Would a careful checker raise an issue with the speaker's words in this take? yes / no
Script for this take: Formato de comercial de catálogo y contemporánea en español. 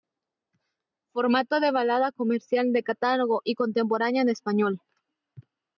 yes